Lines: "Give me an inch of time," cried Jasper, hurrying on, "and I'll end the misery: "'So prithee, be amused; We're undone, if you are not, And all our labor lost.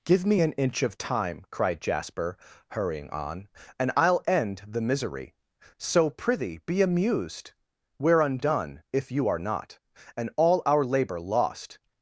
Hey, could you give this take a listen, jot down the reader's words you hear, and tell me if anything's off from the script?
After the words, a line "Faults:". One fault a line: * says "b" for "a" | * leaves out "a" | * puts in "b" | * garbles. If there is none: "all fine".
"Give me an inch of time," cried Jasper, hurrying on, "and I'll end the misery: "'So prithee, be amused; We're undone, if you are not, And all our labor lost.
Faults:
all fine